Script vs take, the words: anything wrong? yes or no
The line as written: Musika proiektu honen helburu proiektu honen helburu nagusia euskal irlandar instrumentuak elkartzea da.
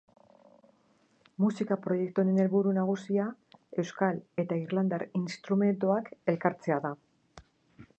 yes